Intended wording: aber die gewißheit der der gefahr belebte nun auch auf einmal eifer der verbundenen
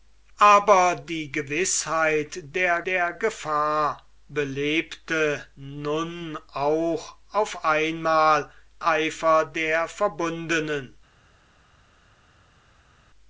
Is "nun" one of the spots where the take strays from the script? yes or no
no